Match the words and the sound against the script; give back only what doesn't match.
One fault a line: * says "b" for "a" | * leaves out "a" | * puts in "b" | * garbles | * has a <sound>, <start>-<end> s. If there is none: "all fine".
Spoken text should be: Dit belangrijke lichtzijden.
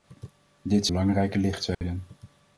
* has a dropout, 1.7-1.8 s